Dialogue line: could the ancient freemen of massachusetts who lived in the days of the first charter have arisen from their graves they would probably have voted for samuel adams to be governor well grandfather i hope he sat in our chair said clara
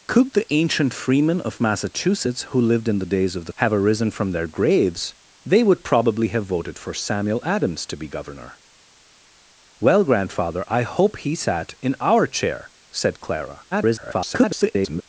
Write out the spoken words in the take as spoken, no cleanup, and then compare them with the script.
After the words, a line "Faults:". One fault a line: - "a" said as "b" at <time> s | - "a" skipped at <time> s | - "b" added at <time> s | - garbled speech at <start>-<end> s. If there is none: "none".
could the ancient freemen of massachusetts who lived in the days of the have arisen from their graves they would probably have voted for samuel adams to be governor well grandfather i hope he sat in our chair said clara [garbled]
Faults:
- "first charter" skipped at 3.5 s
- garbled speech at 13.7-15.0 s